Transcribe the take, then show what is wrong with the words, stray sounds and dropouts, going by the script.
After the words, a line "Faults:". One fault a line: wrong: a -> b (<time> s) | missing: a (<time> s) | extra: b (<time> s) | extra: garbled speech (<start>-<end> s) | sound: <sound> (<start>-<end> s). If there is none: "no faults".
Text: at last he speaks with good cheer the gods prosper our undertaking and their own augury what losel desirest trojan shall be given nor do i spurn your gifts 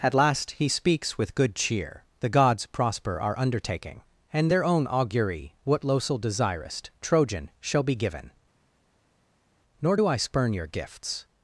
at last he speaks with good cheer the gods prosper our undertaking and their own augury what losel desirest trojan shall be given nor do i spurn your gifts
Faults:
no faults